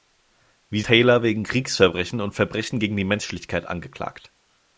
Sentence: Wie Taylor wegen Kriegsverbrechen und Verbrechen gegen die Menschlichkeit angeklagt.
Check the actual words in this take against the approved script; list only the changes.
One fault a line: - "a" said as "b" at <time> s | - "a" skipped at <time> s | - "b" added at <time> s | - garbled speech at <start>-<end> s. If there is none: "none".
none